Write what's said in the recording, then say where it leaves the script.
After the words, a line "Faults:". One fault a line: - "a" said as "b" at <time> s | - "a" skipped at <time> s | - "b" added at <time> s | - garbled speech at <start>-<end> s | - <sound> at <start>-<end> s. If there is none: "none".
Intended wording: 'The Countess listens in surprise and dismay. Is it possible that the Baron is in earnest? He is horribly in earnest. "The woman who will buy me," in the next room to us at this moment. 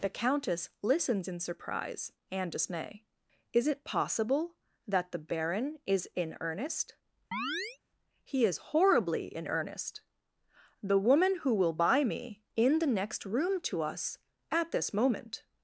'The Countess listens in surprise and dismay. Is it possible that the Baron is in earnest? He is horribly in earnest. "The woman who will buy me," in the next room to us at this moment.
Faults:
- chirp at 7.3-7.8 s